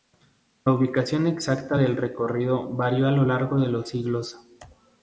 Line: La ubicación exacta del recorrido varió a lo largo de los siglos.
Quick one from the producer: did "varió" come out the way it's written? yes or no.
yes